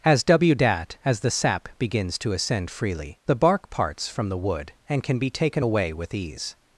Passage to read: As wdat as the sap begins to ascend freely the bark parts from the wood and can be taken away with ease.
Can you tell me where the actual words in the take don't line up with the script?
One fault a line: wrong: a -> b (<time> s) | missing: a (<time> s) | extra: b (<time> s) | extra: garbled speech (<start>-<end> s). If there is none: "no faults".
no faults